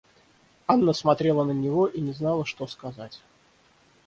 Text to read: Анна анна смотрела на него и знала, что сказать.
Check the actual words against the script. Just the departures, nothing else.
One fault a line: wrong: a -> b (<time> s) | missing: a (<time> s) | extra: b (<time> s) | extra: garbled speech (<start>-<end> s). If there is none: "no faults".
missing: анна (0.9 s)
extra: не (2.0 s)